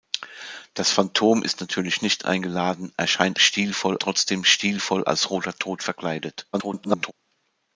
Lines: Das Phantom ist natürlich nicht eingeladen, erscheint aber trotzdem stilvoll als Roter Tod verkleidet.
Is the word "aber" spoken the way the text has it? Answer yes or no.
no